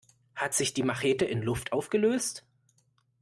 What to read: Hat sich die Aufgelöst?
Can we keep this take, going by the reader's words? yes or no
no